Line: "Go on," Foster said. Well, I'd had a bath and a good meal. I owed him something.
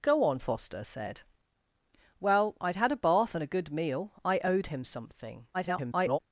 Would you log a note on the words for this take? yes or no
yes